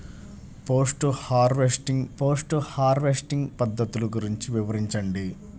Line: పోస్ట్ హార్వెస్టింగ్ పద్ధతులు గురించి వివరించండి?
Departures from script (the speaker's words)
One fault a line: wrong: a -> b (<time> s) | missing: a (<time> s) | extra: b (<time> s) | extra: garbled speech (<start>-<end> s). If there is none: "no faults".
extra: పోస్ట్ హార్వెస్టింగ్ (2.2 s)